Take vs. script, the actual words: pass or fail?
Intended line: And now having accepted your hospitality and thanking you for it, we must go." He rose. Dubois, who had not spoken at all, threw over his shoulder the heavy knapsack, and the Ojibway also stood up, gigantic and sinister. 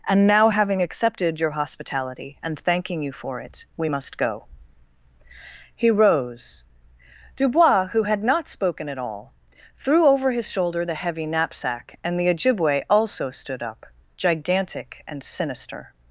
pass